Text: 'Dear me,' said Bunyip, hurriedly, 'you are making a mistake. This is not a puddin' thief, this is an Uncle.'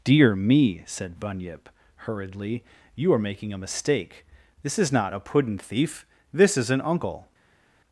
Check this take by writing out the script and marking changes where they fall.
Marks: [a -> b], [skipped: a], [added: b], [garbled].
'Dear me,' said Bunyip, hurriedly, 'you are making a mistake. This is not a puddin' thief, this is an Uncle.'